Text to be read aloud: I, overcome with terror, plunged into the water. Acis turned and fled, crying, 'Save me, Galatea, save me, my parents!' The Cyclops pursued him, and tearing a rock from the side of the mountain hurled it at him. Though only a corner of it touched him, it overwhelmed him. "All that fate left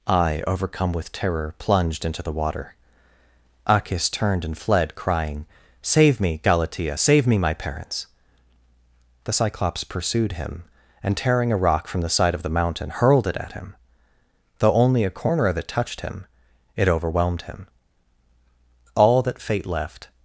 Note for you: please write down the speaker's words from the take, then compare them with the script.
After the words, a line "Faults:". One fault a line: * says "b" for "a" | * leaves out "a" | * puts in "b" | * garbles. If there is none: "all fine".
I, overcome with terror, plunged into the water. Acis turned and fled, crying, 'Save me, Galatea, save me, my parents!' The Cyclops pursued him, and tearing a rock from the side of the mountain hurled it at him. Though only a corner of it touched him, it overwhelmed him. "All that fate left
Faults:
all fine